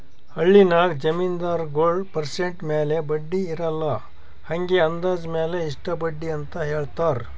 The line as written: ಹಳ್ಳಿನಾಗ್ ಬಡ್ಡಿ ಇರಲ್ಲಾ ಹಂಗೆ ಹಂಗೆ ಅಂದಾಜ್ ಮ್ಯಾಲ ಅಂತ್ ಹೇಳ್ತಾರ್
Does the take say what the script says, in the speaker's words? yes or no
no